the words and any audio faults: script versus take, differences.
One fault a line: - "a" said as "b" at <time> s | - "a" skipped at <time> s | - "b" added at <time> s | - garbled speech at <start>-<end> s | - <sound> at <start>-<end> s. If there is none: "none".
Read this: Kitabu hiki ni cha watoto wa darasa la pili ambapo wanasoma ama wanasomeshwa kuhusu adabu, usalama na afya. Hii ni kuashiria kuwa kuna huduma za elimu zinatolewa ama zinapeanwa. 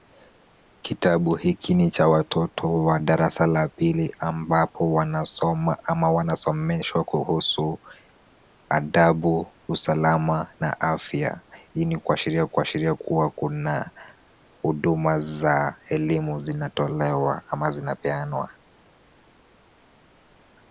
- "kuashiria" added at 12.4 s